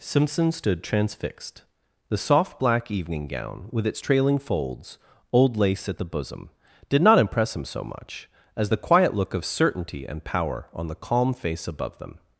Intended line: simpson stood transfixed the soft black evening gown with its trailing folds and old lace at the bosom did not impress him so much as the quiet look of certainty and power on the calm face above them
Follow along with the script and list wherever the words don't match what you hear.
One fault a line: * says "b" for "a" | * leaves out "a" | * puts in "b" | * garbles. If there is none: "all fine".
* leaves out "and"